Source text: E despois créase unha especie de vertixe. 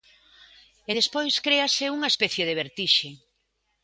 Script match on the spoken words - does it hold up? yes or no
yes